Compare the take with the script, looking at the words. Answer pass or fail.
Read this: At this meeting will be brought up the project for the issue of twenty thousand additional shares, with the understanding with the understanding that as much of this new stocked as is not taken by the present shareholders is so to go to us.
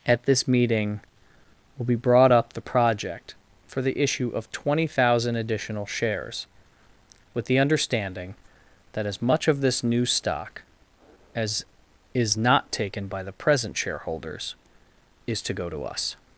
fail